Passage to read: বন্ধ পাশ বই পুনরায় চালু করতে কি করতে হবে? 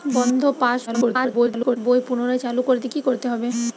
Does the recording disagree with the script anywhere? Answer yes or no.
yes